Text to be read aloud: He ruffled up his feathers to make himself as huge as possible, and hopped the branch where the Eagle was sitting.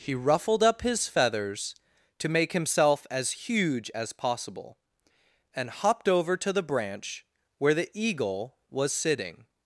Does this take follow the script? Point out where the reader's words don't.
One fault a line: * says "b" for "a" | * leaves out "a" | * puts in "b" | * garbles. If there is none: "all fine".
* puts in "over to"